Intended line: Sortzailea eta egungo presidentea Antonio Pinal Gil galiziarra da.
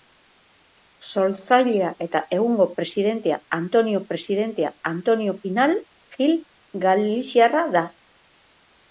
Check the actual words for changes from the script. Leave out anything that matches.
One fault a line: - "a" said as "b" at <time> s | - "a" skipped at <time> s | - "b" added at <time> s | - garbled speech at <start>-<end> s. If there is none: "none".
- "presidentea Antonio" added at 4.1 s